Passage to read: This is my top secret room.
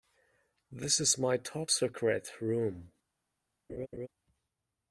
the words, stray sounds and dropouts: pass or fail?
fail